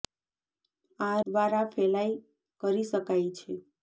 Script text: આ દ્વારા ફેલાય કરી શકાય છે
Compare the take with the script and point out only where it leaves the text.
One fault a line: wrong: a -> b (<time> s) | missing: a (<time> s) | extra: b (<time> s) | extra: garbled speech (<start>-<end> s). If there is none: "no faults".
no faults